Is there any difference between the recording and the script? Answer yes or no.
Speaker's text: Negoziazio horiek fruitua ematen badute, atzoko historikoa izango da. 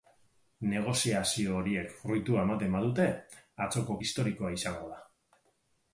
no